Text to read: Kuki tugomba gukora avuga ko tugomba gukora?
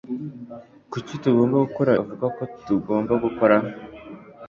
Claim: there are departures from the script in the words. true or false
false